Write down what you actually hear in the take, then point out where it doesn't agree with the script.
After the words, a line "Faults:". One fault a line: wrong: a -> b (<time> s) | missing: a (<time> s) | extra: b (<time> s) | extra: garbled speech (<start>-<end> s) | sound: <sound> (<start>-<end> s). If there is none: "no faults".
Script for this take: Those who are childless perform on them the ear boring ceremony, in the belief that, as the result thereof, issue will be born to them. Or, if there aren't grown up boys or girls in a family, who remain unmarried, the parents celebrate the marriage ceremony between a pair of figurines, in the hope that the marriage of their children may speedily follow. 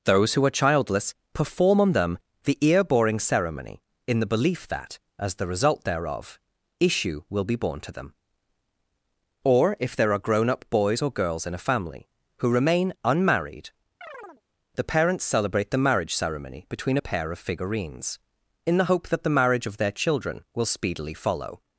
Those who are childless perform on them the ear boring ceremony, in the belief that, as the result thereof, issue will be born to them. Or, if there are grown up boys or girls in a family, who remain unmarried, the parents celebrate the marriage ceremony between a pair of figurines, in the hope that the marriage of their children will speedily follow.
Faults:
wrong: aren't -> are (10.1 s)
sound: chirp (14.0-14.4 s)
wrong: may -> will (20.6 s)